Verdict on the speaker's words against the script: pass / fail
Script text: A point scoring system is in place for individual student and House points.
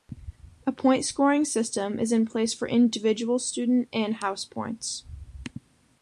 pass